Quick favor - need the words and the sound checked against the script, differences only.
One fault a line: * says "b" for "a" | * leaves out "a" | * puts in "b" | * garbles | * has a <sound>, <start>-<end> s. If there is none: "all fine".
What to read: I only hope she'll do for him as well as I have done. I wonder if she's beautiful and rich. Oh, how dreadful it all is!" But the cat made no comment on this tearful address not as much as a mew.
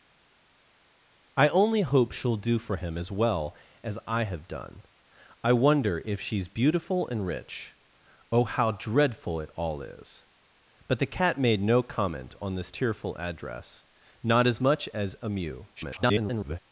* garbles